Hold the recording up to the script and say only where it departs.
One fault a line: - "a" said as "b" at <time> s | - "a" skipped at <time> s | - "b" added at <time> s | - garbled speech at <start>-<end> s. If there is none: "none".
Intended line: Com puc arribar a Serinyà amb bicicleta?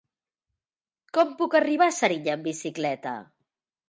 none